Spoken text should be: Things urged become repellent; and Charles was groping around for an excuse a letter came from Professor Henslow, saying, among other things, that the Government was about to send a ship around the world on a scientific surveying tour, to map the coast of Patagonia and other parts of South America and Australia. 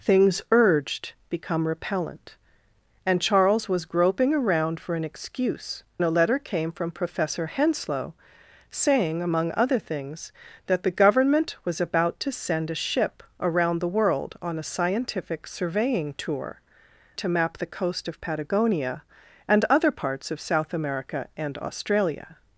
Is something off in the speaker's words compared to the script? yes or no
no